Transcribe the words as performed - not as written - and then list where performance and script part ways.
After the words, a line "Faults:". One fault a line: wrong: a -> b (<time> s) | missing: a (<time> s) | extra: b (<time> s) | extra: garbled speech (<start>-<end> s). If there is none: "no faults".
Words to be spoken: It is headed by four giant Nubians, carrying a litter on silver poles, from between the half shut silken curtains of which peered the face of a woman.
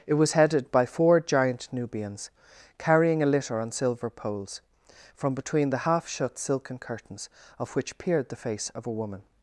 It was headed by four giant Nubians, carrying a litter on silver poles, from between the half shut silken curtains of which peered the face of a woman.
Faults:
wrong: is -> was (0.1 s)